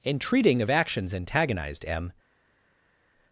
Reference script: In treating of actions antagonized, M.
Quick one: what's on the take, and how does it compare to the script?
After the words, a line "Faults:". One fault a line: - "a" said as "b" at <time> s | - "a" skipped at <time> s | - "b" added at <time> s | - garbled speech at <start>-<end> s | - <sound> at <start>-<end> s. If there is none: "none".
In treating of actions antagonized, M.
Faults:
none